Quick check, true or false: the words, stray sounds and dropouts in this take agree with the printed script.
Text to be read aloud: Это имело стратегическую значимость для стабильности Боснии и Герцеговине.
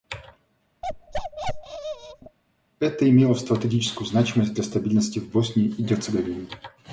false